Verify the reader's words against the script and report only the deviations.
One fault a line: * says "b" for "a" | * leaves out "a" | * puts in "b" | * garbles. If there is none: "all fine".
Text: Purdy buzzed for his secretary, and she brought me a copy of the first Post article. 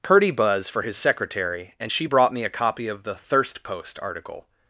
* says "buzz" for "buzzed"
* says "thirst" for "first"